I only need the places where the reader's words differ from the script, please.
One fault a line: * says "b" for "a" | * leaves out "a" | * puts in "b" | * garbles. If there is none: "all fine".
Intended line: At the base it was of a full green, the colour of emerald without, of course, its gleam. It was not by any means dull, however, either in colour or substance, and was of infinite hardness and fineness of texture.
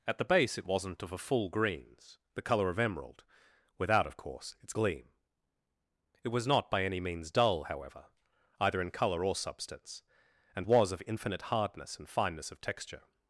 * says "wasn't" for "was"
* says "greens" for "green"